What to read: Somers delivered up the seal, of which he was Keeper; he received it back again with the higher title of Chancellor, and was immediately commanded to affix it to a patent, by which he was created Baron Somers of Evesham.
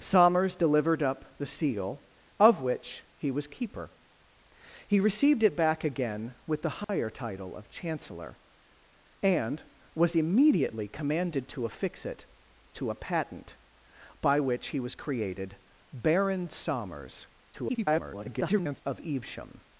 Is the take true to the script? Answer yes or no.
no